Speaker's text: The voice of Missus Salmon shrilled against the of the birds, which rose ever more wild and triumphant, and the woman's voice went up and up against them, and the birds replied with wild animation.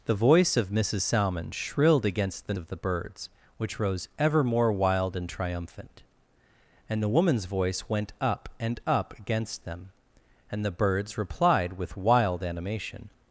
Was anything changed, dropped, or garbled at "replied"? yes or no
no